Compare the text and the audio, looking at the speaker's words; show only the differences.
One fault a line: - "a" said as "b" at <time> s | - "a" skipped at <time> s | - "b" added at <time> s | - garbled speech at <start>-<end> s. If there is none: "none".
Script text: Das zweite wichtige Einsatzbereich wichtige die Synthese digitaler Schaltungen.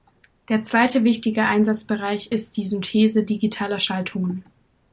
- "Das" said as "Der" at 0.5 s
- "wichtige" said as "ist" at 2.3 s